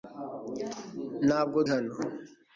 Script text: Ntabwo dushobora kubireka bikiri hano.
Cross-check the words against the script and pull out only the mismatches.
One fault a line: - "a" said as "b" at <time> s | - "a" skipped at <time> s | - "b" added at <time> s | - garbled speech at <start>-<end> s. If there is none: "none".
- "dushobora kubireka bikiri" skipped at 1.6 s